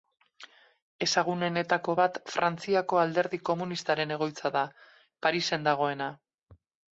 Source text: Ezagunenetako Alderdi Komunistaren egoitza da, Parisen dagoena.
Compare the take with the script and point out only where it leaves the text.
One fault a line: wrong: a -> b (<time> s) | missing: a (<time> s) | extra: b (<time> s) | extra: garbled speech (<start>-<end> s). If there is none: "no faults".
extra: bat Frantziako (2.0 s)